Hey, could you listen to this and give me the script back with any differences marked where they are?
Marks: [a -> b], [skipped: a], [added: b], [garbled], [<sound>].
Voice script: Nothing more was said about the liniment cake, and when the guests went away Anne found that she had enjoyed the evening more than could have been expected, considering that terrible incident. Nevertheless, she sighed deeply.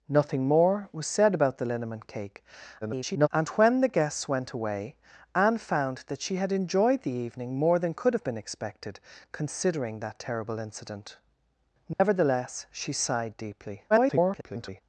Nothing more was said about the liniment cake, [garbled] and when the guests went away Anne found that she had enjoyed the evening more than could have been expected, considering that terrible incident. Nevertheless, [dropout] she sighed deeply. [garbled]